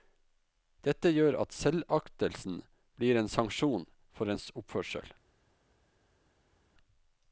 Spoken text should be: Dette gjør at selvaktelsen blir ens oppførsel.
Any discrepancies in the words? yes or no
yes